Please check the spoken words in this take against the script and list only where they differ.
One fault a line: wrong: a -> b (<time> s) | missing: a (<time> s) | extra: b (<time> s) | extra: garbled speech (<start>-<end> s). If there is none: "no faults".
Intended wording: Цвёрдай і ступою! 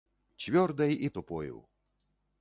no faults